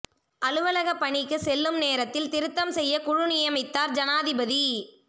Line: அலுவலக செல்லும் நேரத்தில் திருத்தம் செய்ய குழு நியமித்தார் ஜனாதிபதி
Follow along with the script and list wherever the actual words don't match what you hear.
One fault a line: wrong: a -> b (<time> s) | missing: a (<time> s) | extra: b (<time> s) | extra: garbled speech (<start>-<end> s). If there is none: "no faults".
extra: பணிக்கு (0.9 s)